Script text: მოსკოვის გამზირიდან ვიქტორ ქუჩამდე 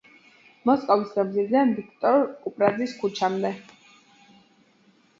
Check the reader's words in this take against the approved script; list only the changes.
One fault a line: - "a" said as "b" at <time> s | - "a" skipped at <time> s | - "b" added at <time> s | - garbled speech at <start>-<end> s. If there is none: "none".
- "კუპრაძის" added at 2.5 s